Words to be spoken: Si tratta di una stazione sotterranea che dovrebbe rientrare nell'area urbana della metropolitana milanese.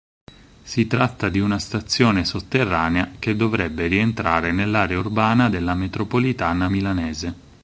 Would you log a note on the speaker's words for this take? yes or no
no